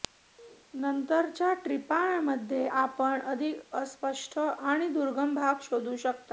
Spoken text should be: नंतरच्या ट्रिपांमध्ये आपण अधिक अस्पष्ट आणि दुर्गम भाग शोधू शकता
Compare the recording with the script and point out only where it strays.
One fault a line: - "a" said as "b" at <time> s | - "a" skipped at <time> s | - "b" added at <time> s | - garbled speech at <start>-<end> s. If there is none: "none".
none